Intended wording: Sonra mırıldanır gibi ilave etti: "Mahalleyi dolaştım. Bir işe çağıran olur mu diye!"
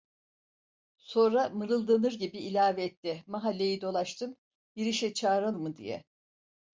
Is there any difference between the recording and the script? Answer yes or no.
yes